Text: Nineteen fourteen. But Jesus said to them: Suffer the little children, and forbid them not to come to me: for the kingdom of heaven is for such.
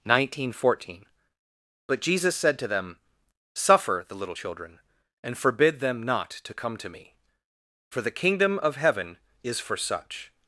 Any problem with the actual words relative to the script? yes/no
no